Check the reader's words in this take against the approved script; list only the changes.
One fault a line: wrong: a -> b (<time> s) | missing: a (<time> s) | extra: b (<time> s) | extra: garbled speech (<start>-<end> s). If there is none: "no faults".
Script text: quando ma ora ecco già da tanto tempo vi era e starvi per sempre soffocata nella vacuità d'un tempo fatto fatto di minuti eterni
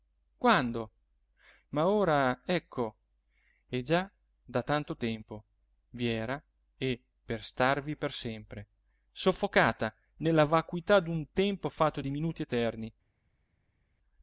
extra: e (3.7 s)
extra: per (7.2 s)
missing: fatto (12.0 s)